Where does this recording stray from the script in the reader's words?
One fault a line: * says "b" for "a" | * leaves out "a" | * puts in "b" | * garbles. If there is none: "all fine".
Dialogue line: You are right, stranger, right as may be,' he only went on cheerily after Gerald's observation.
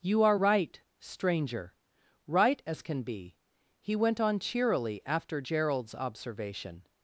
* says "can" for "may"
* leaves out "only"